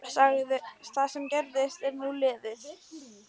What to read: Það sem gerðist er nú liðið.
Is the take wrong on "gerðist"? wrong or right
right